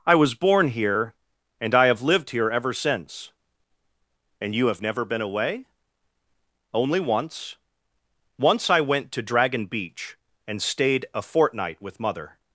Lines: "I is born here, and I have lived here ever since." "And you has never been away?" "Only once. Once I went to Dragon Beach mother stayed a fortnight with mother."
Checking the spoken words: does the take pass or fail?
fail